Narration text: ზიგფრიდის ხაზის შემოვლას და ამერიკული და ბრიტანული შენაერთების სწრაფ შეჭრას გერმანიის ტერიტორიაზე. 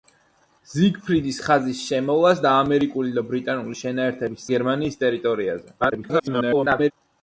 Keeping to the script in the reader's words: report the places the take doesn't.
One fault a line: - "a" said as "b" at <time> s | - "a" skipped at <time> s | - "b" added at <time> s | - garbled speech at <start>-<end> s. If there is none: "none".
- "სწრაფ შეჭრას" skipped at 4.5 s
- garbled speech at 5.8-6.9 s